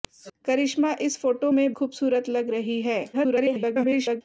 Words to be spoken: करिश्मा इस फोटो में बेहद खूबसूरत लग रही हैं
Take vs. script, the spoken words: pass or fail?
fail